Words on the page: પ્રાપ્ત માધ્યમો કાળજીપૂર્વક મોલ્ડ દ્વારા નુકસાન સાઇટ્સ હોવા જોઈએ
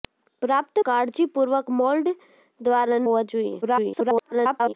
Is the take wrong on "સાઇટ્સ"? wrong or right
wrong